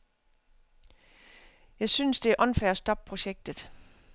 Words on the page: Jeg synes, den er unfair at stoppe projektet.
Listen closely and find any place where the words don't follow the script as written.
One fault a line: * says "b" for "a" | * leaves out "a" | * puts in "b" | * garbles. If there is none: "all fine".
* says "det" for "den"